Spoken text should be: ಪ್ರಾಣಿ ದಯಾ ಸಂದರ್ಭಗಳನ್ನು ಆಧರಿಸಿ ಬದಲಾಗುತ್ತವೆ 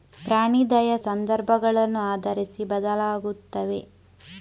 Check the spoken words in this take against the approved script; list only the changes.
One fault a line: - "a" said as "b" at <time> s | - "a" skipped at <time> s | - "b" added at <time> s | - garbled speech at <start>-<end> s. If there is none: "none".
none